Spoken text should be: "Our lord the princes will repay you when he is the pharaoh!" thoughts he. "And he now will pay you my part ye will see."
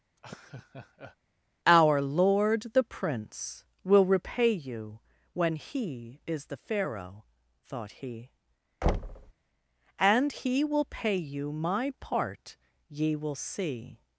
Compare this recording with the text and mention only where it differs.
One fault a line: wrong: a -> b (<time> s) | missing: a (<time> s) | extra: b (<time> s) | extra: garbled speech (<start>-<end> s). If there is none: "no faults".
wrong: princes -> prince (2.8 s)
wrong: thoughts -> thought (7.6 s)
missing: now (10.6 s)